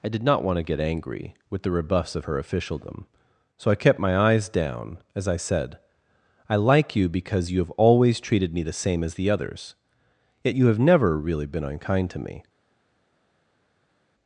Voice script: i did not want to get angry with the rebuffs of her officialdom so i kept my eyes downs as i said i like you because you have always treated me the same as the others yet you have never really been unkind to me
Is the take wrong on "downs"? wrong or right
wrong